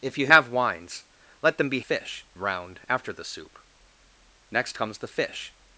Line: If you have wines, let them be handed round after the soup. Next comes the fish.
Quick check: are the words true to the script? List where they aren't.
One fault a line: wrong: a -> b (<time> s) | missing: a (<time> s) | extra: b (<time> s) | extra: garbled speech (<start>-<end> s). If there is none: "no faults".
wrong: handed -> fish (1.8 s)